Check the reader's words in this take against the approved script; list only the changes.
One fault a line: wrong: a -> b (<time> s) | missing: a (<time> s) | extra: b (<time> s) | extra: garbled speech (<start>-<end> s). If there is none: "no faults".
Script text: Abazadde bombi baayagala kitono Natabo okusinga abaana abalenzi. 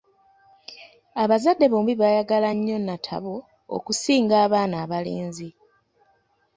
wrong: kitono -> nnyo (2.6 s)